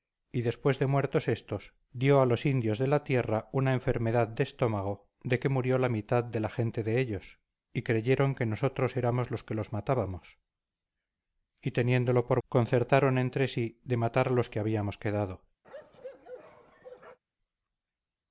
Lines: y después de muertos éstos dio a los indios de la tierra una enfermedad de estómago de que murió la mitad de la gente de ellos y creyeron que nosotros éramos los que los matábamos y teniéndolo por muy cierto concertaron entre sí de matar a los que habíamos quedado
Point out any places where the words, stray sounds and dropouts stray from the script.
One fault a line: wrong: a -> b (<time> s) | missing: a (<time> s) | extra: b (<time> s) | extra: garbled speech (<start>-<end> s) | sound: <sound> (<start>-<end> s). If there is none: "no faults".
missing: muy cierto (12.4 s)
sound: bark (15.6-17.2 s)